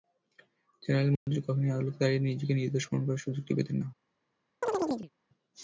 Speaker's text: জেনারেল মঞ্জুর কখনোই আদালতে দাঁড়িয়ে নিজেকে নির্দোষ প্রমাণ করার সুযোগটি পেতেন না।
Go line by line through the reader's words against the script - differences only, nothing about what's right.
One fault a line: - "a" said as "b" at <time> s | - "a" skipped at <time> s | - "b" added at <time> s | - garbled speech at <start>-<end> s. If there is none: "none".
none